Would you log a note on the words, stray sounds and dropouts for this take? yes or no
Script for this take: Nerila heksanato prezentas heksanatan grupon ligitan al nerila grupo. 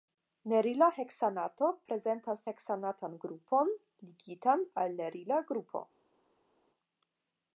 no